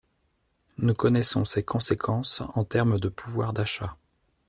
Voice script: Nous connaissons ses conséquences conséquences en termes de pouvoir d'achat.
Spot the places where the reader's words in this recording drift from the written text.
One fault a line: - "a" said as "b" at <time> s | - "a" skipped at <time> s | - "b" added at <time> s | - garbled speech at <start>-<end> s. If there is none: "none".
- "conséquences" skipped at 2.4 s